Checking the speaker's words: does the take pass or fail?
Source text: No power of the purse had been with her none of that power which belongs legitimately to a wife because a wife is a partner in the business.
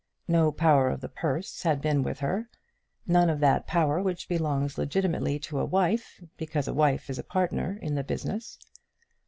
pass